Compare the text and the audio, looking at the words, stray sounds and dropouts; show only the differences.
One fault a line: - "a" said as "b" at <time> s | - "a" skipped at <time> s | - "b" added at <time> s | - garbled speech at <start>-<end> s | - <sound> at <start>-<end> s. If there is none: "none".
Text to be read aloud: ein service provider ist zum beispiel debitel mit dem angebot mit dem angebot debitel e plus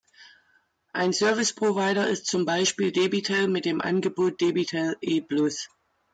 - "mit dem angebot" skipped at 4.4 s